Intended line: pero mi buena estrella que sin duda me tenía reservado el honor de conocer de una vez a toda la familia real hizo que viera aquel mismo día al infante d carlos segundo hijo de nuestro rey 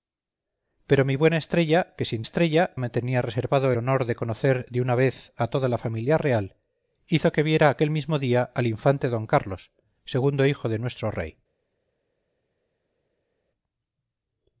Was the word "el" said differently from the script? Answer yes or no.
yes